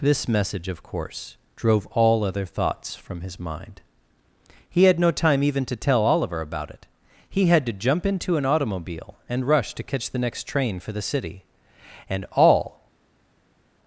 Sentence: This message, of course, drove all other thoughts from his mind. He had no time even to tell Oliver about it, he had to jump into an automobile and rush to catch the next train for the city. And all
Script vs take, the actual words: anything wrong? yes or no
no